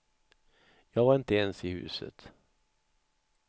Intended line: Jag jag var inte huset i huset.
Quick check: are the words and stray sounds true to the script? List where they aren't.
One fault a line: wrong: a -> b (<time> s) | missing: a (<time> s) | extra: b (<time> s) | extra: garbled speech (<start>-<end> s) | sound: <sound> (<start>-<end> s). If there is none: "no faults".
missing: jag (1.1 s)
wrong: huset -> ens (1.4 s)